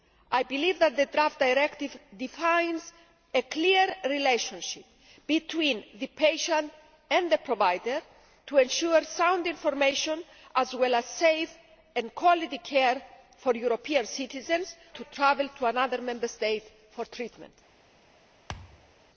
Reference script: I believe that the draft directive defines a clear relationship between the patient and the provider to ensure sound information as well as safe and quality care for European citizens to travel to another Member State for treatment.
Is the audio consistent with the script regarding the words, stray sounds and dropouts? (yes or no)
no